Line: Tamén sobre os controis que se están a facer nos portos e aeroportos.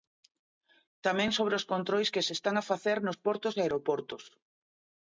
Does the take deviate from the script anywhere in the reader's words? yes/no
no